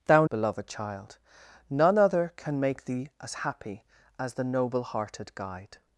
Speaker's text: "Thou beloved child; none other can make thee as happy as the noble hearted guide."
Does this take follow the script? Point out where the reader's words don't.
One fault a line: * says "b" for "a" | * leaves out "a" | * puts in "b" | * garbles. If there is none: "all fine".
all fine